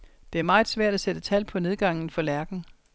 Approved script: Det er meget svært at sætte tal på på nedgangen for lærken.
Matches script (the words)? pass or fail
fail